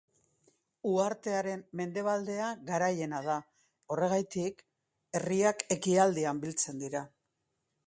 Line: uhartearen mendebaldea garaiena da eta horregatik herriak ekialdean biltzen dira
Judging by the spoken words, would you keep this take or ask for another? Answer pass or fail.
fail